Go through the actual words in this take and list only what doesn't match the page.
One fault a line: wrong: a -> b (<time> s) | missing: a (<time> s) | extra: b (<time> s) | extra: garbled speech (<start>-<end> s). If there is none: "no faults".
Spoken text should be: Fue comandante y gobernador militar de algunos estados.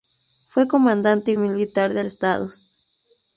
missing: gobernador (1.4 s)
missing: algunos (2.0 s)